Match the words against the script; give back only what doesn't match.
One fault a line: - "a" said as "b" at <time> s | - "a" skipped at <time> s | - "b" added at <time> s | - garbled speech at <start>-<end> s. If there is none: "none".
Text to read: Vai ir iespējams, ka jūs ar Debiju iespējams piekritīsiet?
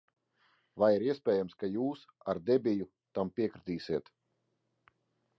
- "iespējams" said as "tam" at 3.2 s